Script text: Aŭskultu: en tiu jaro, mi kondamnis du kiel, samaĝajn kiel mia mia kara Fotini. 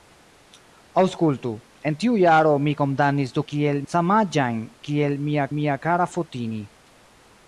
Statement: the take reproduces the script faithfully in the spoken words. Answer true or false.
true